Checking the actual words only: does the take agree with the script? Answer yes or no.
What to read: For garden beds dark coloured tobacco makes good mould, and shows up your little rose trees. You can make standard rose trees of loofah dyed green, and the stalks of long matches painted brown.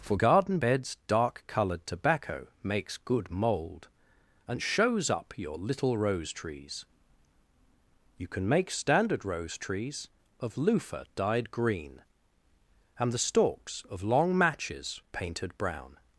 yes